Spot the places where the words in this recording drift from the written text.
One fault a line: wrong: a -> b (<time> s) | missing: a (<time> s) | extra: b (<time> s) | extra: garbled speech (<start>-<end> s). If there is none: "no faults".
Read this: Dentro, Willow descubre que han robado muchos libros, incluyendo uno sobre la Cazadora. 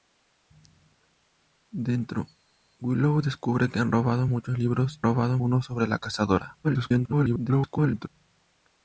wrong: incluyendo -> robado (5.0 s)
extra: garbled speech (6.6-8.1 s)